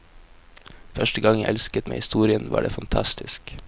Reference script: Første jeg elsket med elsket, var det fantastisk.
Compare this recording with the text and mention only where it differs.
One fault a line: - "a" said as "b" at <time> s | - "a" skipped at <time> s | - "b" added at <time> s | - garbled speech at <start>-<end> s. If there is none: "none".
- "gang" added at 1.2 s
- "elsket" said as "historien" at 1.9 s